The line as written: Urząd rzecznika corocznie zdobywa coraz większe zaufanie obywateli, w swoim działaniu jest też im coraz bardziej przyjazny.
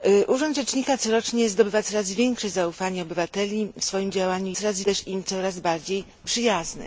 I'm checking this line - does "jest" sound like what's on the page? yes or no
no